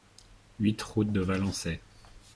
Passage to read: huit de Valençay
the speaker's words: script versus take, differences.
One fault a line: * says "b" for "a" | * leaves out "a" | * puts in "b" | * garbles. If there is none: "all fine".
* puts in "route"